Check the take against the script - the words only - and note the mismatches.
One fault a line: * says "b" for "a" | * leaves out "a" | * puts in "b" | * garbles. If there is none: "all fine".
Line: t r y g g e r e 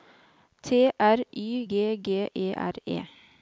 all fine